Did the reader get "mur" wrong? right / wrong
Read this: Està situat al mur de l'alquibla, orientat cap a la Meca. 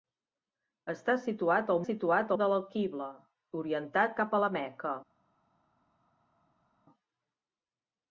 wrong